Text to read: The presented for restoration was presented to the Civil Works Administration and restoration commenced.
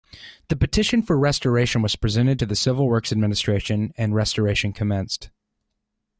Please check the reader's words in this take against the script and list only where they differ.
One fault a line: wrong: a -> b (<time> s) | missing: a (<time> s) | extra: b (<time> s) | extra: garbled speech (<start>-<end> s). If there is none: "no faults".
wrong: presented -> petition (0.6 s)